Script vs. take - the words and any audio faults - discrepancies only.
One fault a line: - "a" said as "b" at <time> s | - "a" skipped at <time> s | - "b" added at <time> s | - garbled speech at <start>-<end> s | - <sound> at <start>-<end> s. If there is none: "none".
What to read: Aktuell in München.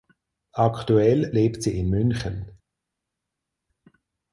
- "lebt sie" added at 1.3 s